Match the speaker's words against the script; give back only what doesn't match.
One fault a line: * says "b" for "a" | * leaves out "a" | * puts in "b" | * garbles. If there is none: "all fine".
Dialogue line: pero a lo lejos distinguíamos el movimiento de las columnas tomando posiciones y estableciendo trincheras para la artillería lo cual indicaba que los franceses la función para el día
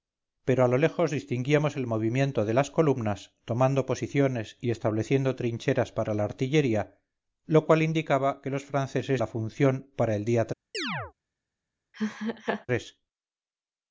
all fine